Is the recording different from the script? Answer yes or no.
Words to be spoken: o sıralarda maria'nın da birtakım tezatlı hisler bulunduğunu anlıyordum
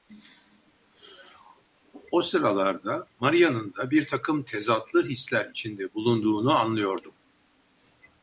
yes